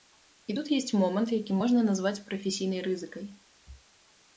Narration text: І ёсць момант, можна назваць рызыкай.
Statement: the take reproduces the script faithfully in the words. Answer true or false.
false